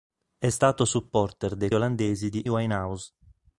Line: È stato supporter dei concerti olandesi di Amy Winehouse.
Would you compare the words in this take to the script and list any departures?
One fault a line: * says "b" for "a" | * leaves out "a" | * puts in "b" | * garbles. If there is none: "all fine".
* leaves out "concerti"
* leaves out "Amy"